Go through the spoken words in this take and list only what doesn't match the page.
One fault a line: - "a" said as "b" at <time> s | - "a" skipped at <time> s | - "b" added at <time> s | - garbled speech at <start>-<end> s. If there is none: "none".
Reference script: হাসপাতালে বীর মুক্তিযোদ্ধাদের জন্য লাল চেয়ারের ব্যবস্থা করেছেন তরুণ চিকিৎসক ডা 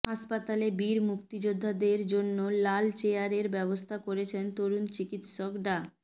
none